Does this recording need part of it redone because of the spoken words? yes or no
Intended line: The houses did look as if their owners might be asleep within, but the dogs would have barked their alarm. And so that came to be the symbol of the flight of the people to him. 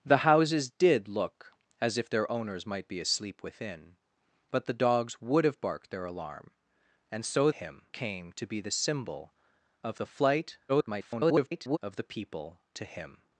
yes